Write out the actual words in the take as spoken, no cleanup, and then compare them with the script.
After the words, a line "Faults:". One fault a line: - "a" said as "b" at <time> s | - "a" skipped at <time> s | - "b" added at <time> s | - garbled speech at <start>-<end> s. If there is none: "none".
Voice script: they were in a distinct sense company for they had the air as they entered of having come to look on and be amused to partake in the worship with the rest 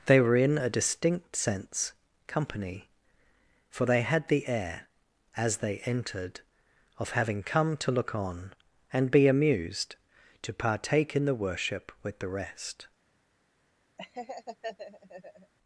they were in a distinct sense company for they had the air as they entered of having come to look on and be amused to partake in the worship with the rest
Faults:
none